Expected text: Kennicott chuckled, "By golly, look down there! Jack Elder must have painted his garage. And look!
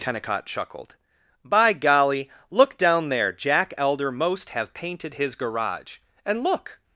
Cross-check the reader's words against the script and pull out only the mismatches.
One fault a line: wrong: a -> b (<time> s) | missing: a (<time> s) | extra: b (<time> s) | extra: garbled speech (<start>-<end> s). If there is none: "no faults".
wrong: must -> most (4.1 s)